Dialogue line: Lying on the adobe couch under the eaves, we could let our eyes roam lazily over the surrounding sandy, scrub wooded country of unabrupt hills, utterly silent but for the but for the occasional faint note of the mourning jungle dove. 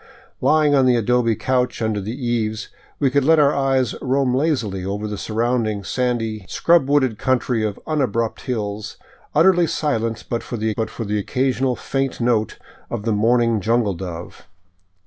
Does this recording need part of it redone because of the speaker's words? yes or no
no